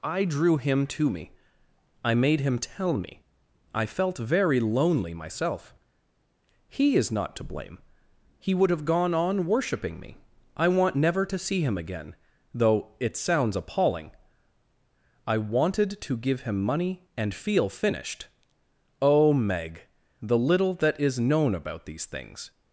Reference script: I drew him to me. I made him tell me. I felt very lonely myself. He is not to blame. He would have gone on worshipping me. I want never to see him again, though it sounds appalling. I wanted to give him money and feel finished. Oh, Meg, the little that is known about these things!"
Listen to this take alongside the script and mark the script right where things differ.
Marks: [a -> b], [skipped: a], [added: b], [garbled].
I drew him to me. I made him tell me. I felt very lonely myself. He is not to blame. He would have gone on worshipping me. I want never to see him again, though it sounds appalling. I wanted to give him money and feel finished. Oh, Meg, the little that is known about these things!"